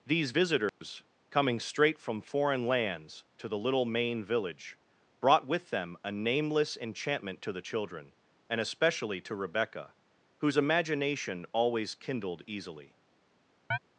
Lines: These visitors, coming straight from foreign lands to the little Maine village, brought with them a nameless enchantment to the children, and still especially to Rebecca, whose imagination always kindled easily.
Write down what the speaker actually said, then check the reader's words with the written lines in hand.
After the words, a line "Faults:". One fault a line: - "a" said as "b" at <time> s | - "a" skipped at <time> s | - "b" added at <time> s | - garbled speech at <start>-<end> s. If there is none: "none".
These visitors, coming straight from foreign lands to the little Maine village, brought with them a nameless enchantment to the children, and especially to Rebecca, whose imagination always kindled easily.
Faults:
- "still" skipped at 8.6 s